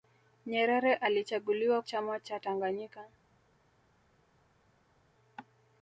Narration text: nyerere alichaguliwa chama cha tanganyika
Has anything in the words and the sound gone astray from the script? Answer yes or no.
no